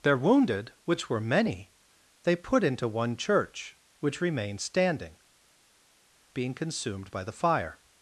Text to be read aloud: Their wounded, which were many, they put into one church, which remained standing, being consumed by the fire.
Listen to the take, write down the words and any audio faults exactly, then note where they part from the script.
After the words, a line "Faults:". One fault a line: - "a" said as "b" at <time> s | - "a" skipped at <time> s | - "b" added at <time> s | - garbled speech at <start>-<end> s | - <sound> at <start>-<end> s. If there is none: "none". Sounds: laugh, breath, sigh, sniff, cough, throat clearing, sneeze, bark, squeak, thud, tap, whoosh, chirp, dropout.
Their wounded, which were many, they put into one church, which remained standing, being consumed by the fire.
Faults:
none